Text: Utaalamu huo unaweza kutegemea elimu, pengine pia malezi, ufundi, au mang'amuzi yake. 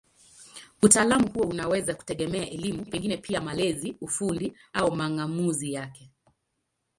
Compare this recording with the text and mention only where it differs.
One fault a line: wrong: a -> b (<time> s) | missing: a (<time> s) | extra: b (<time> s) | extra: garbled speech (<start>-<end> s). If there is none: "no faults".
no faults